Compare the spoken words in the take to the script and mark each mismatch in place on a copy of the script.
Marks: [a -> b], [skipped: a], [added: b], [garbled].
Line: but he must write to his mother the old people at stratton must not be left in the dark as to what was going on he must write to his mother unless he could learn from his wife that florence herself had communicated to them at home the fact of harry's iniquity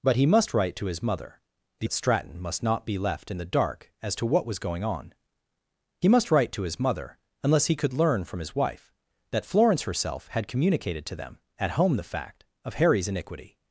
but he must write to his mother the [skipped: old people] at stratton must not be left in the dark as to what was going on he must write to his mother unless he could learn from his wife that florence herself had communicated to them at home the fact of harry's iniquity